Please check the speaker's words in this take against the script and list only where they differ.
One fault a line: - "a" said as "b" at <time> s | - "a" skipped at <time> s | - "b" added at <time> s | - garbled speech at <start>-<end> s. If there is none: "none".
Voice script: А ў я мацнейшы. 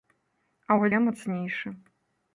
none